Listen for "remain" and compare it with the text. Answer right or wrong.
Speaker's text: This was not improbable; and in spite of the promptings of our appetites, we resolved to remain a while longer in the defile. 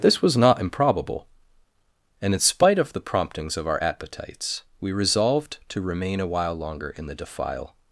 right